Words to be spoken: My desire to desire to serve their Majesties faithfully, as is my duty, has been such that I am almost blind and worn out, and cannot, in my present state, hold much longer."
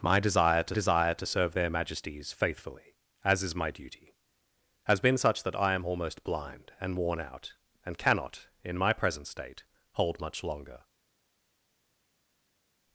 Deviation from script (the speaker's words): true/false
false